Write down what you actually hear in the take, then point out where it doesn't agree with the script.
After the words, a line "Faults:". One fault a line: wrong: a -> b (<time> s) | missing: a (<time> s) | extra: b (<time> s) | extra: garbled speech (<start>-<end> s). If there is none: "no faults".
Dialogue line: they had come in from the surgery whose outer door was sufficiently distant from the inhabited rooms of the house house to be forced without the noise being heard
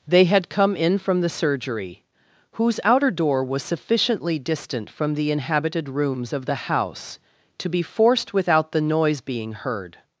they had come in from the surgery whose outer door was sufficiently distant from the inhabited rooms of the house to be forced without the noise being heard
Faults:
missing: house (7.2 s)